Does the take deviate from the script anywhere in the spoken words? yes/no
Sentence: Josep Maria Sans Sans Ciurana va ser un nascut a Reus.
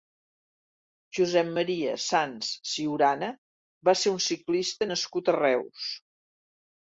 yes